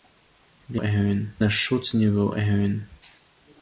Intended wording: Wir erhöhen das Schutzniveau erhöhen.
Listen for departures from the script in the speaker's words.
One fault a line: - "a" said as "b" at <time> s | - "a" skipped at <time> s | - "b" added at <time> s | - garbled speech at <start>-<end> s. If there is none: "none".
none